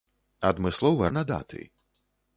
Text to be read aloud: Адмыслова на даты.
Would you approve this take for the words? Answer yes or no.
yes